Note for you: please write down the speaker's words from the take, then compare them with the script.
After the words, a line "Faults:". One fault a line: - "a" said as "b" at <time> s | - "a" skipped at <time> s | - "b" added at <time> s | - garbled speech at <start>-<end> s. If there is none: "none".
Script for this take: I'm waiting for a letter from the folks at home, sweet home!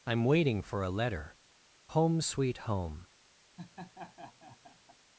I'm waiting for a letter home, sweet home!
Faults:
- "from the folks at" skipped at 1.4 s